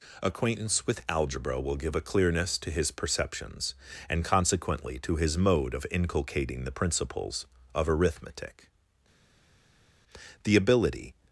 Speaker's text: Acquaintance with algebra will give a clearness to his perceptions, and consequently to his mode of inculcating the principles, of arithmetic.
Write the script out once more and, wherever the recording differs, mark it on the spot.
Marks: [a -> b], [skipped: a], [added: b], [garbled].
Acquaintance with algebra will give a clearness to his perceptions, and consequently to his mode of inculcating the principles, of arithmetic. [added: The ability]